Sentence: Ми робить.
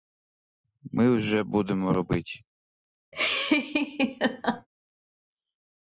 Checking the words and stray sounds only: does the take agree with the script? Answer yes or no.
no